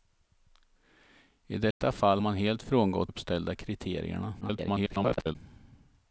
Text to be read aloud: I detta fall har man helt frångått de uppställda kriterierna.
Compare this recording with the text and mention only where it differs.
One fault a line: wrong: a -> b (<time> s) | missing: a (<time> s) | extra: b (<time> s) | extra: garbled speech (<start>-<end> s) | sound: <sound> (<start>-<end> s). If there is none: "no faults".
sound: dropout (1.7-1.8 s)
missing: har (2.2 s)
missing: de (3.1 s)
extra: garbled speech (4.4-5.4 s)